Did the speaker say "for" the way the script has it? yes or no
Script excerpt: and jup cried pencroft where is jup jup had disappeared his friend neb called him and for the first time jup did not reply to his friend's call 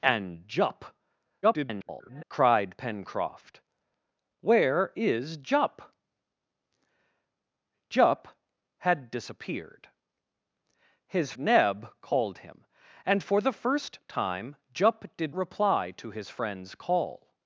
yes